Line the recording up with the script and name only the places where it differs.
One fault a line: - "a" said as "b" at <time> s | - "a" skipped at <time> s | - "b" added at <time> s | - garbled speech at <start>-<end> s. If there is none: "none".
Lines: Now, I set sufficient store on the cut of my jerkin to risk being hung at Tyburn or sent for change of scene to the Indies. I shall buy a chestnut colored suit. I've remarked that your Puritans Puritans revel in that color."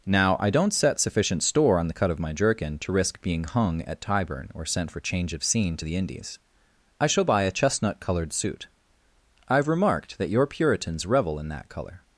- "don't" added at 0.5 s
- "Puritans" skipped at 11.1 s